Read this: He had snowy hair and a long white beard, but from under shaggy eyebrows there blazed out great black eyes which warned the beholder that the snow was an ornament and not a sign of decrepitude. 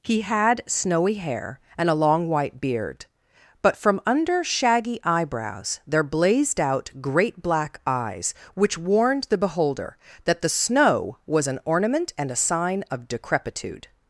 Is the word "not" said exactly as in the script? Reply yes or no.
no